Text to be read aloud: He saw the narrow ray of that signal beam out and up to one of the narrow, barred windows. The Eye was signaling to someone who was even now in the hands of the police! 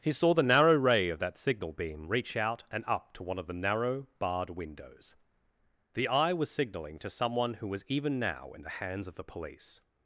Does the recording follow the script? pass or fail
fail